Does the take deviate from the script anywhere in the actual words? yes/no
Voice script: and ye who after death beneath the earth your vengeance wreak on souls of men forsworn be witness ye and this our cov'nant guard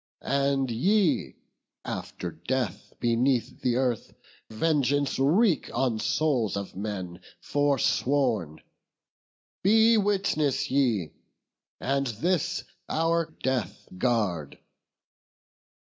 yes